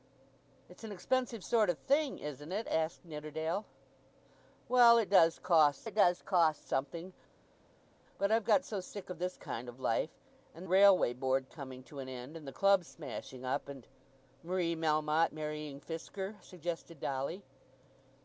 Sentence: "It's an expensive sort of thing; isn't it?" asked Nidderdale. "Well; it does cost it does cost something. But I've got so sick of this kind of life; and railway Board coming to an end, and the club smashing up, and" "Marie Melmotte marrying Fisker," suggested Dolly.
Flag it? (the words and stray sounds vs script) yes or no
no